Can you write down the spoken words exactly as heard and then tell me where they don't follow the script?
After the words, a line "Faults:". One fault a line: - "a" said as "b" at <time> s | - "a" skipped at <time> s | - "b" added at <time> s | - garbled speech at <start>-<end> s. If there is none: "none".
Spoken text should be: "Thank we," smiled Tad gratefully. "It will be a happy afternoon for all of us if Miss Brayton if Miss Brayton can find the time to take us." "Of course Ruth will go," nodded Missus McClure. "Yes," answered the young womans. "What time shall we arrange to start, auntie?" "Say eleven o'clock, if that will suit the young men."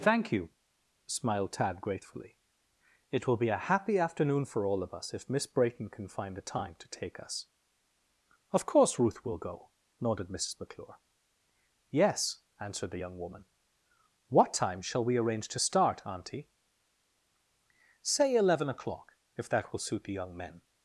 "Thank you," smiled Tad gratefully. "It will be a happy afternoon for all of us if Miss Brayton can find the time to take us." "Of course Ruth will go," nodded Missus McClure. "Yes," answered the young woman. "What time shall we arrange to start, auntie?" "Say eleven o'clock, if that will suit the young men."
Faults:
- "we" said as "you" at 0.3 s
- "if Miss Brayton" skipped at 5.9 s
- "womans" said as "woman" at 13.2 s